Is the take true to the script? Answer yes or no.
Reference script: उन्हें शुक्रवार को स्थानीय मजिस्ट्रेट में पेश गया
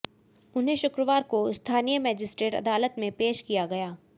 no